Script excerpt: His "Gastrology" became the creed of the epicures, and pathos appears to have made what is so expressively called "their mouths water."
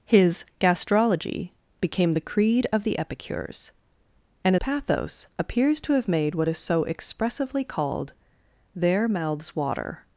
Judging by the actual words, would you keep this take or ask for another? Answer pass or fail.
pass